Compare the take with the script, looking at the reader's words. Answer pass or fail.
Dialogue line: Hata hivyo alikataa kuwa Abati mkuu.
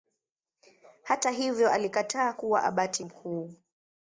pass